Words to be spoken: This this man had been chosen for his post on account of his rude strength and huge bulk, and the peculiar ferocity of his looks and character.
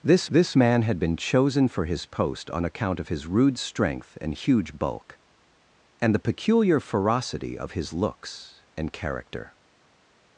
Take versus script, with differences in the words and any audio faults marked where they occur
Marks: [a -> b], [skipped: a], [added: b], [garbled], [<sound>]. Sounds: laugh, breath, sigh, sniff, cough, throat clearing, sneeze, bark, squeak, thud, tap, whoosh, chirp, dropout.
This this man had been chosen for his post on account of his rude strength and huge bulk, and the peculiar ferocity of his looks and character.